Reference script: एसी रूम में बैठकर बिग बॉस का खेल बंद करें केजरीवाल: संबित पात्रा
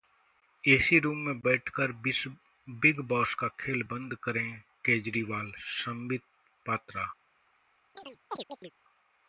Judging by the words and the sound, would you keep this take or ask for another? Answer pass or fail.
fail